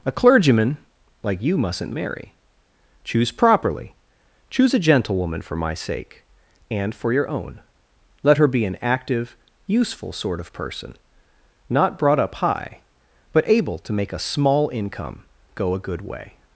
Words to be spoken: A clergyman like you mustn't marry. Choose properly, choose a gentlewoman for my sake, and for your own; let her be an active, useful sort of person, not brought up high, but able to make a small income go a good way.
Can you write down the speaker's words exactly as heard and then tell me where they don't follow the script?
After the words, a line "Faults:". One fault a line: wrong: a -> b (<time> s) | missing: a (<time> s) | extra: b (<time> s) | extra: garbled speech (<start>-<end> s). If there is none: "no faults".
A clergyman like you mustn't marry. Choose properly, choose a gentlewoman for my sake, and for your own; let her be an active, useful sort of person, not brought up high, but able to make a small income go a good way.
Faults:
no faults